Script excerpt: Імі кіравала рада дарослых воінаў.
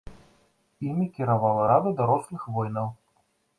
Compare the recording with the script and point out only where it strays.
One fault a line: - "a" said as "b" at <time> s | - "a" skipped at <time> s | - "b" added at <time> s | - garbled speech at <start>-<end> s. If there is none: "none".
none